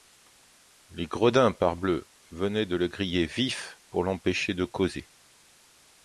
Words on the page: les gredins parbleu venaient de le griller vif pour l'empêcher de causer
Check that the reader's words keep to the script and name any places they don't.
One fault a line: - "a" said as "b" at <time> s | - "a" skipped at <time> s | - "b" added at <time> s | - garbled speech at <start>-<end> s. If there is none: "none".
none